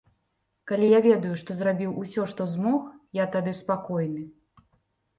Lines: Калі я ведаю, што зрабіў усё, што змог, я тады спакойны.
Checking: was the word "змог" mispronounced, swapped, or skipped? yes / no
no